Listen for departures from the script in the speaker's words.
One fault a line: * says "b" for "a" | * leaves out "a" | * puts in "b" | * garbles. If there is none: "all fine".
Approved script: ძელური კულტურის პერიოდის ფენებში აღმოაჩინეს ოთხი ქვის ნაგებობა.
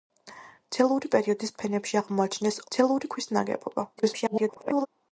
* leaves out "კულტურის"
* says "ძელური" for "ოთხი"
* garbles